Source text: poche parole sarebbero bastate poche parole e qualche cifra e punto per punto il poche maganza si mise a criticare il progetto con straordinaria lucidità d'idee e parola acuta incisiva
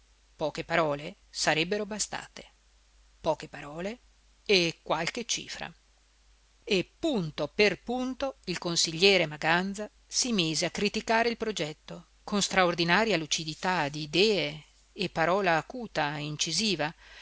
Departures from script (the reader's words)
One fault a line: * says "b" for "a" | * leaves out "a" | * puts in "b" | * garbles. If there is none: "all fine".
* says "consigliere" for "poche"